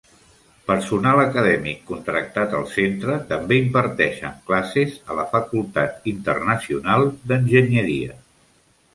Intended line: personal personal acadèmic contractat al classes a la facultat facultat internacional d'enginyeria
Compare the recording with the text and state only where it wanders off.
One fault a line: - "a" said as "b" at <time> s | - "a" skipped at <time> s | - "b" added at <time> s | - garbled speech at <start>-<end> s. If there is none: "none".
- "personal" skipped at 1.2 s
- "centre també imparteixen" added at 2.8 s
- "facultat" skipped at 6.1 s